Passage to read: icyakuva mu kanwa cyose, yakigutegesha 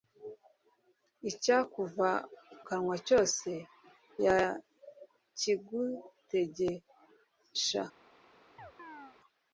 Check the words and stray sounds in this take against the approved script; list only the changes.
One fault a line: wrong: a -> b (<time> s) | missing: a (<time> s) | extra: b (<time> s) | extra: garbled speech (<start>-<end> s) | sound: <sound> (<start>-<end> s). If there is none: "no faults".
missing: mu (2.1 s)
sound: chirp (8.6-9.2 s)